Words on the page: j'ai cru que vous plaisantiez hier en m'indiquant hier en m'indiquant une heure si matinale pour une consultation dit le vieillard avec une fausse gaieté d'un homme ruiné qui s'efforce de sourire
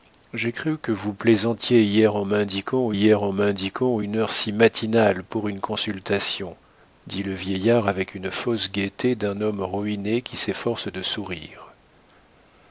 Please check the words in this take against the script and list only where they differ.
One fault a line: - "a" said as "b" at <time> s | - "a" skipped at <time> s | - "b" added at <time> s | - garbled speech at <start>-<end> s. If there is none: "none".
none